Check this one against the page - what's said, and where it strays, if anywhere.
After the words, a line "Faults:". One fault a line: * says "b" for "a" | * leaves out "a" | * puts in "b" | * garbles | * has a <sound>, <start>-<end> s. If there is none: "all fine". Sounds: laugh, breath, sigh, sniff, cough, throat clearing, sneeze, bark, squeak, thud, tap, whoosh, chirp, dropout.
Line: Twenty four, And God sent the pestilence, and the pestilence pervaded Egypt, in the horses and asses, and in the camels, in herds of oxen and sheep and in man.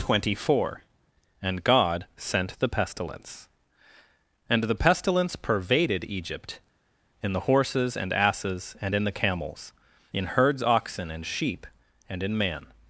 Twenty four, And God sent the pestilence, and the pestilence pervaded Egypt, in the horses and asses, and in the camels, in herds oxen and sheep and in man.
Faults:
* leaves out "of"